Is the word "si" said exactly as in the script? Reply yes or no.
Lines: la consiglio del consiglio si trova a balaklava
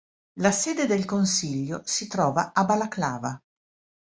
yes